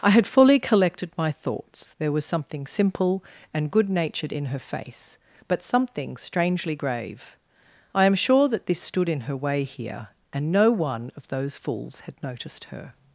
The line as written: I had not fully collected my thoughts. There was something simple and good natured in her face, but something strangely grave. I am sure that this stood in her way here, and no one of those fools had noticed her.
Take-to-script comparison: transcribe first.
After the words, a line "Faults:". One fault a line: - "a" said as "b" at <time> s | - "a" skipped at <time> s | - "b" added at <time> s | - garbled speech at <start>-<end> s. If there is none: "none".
I had fully collected my thoughts. There was something simple and good natured in her face, but something strangely grave. I am sure that this stood in her way here, and no one of those fools had noticed her.
Faults:
- "not" skipped at 0.2 s